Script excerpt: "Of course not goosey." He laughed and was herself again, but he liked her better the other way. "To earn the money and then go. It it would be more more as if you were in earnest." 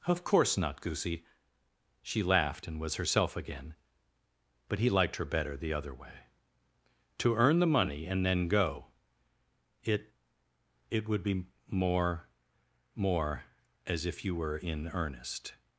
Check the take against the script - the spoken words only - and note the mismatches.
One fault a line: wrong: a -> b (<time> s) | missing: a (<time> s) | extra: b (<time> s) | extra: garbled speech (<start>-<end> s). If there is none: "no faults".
wrong: He -> She (2.0 s)